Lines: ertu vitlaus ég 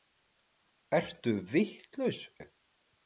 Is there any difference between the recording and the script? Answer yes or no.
no